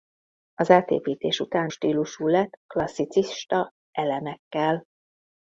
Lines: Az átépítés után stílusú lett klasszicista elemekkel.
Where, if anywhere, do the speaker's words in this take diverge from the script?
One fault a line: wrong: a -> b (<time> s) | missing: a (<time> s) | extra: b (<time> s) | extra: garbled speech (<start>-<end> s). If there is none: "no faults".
no faults